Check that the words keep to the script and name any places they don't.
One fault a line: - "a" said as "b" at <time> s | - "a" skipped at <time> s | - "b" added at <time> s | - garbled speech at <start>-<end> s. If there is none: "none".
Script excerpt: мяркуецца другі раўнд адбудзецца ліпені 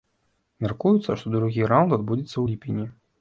- "што" added at 1.2 s
- "ў" added at 2.3 s